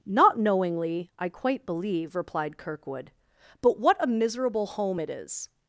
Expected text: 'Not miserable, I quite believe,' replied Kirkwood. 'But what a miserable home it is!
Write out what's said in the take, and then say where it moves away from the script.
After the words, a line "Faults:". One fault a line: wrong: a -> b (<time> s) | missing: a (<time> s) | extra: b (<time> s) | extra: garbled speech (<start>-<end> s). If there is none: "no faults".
'Not knowingly, I quite believe,' replied Kirkwood. 'But what a miserable home it is!
Faults:
wrong: miserable -> knowingly (0.4 s)